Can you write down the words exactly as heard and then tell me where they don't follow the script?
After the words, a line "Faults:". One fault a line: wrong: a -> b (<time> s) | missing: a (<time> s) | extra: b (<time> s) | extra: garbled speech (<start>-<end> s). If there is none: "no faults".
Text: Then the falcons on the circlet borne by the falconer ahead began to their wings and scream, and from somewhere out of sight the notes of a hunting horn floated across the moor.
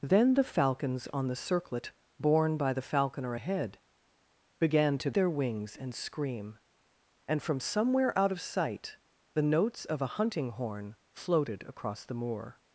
Then the falcons on the circlet borne by the falconer ahead began to their wings and scream, and from somewhere out of sight the notes of a hunting horn floated across the moor.
Faults:
no faults